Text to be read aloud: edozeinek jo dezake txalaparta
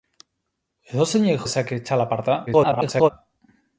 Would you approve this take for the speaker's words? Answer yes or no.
no